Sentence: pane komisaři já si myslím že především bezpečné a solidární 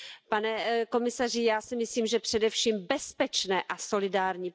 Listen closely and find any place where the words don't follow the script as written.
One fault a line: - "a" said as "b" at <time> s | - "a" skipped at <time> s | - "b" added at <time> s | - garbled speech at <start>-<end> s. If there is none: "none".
none